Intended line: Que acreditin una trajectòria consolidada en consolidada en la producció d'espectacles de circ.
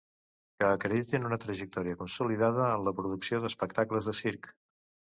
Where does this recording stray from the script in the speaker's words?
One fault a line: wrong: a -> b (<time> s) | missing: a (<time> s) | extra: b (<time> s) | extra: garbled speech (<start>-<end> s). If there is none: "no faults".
missing: consolidada en (2.9 s)